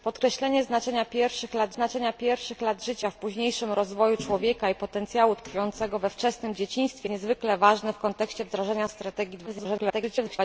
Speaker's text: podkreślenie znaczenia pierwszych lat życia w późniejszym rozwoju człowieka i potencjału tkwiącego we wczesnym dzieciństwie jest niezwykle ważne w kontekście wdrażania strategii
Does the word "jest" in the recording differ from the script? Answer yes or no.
yes